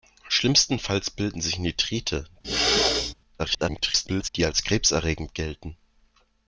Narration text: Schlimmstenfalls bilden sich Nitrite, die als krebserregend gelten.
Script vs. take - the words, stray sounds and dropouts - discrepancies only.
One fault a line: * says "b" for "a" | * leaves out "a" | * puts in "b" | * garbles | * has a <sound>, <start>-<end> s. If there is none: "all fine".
* has a throat clearing, 2.4-3.1 s
* garbles